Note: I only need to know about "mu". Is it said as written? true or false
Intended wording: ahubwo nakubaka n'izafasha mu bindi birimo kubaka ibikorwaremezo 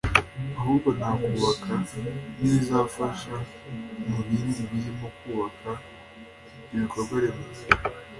true